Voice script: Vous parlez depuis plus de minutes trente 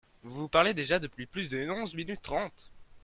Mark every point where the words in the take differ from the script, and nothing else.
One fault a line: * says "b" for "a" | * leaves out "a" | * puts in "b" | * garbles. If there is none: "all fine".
* puts in "déjà"
* puts in "onze"